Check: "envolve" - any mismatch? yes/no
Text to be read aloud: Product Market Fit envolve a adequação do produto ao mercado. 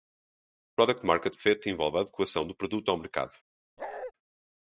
no